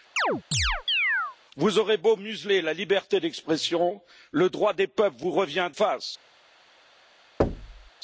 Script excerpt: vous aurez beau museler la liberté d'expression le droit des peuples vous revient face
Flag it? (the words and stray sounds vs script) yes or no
yes